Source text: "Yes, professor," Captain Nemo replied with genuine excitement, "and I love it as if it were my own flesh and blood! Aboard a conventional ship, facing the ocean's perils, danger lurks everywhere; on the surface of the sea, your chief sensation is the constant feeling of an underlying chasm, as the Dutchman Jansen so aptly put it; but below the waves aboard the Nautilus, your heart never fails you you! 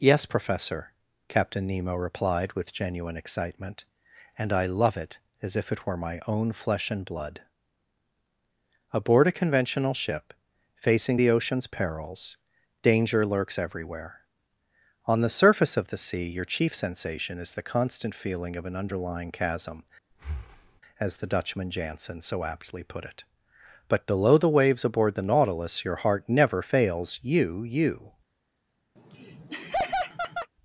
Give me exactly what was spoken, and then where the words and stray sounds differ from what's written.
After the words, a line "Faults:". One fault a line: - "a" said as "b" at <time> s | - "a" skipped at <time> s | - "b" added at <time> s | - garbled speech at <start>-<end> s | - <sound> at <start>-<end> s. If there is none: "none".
"Yes, professor," Captain Nemo replied with genuine excitement, "and I love it as if it were my own flesh and blood! Aboard a conventional ship, facing the ocean's perils, danger lurks everywhere; on the surface of the sea, your chief sensation is the constant feeling of an underlying chasm, as the Dutchman Jansen so aptly put it; but below the waves aboard the Nautilus, your heart never fails you you!
Faults:
- breath at 20.1-20.8 s
- laugh at 29.0-30.5 s